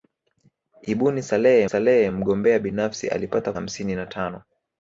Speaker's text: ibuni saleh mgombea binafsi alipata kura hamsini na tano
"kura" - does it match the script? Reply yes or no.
no